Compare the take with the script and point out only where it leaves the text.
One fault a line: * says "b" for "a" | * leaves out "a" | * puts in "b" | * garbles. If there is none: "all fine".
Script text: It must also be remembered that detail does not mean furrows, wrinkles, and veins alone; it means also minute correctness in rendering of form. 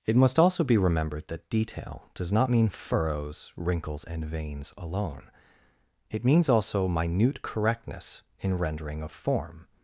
all fine